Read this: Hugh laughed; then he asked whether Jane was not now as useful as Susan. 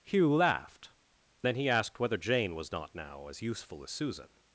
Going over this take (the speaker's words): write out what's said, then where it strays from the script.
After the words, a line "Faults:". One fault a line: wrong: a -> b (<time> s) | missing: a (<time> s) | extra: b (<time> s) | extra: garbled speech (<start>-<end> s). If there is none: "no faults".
Hugh laughed; then he asked whether Jane was not now as useful as Susan.
Faults:
no faults